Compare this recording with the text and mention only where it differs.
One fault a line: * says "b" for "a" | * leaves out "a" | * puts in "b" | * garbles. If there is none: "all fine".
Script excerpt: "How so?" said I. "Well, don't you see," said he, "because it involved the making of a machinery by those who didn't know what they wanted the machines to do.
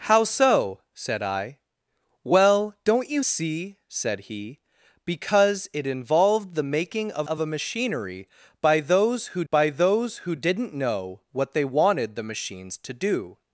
* puts in "of"
* puts in "by those who"